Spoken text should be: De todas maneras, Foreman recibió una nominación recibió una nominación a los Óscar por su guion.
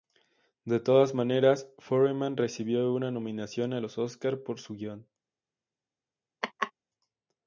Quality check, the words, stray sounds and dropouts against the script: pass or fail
fail